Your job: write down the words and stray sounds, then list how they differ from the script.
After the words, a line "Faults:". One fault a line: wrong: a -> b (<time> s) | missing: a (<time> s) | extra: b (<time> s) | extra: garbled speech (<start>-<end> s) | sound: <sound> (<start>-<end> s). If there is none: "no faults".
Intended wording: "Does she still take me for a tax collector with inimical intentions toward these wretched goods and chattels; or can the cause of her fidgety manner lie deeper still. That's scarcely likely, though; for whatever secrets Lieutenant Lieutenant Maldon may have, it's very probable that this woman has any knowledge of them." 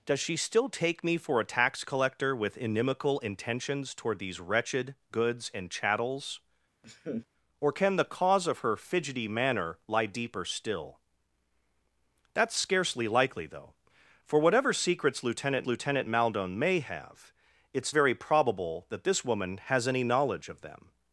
"Does she still take me for a tax collector with inimical intentions toward these wretched goods and chattels; or can the cause of her fidgety manner lie deeper still. That's scarcely likely, though; for whatever secrets Lieutenant Lieutenant Maldon may have, it's very probable that this woman has any knowledge of them."
Faults:
sound: laugh (6.8-7.3 s)